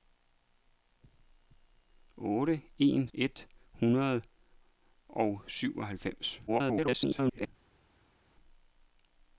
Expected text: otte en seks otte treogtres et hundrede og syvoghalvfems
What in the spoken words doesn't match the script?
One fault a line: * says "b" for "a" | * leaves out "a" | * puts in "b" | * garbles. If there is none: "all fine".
* leaves out "seks otte treogtres"
* garbles